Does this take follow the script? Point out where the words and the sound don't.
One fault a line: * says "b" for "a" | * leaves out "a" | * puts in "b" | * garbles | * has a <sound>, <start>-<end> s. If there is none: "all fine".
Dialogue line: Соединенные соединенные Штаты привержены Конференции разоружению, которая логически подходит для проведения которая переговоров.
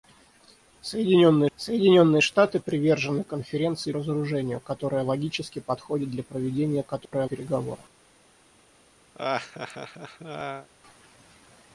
* has a dropout, 7.1-7.1 s
* has a laugh, 9.1-10.7 s